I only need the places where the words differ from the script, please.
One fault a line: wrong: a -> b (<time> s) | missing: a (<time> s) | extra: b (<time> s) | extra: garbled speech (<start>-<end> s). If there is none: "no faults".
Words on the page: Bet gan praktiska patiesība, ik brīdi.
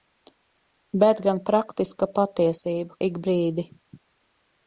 no faults